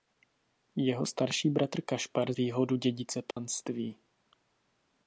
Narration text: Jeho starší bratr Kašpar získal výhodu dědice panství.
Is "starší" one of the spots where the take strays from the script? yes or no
no